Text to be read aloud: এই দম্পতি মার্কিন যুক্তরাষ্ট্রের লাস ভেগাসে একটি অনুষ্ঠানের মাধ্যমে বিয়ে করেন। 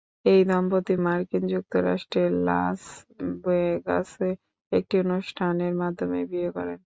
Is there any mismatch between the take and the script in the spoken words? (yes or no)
no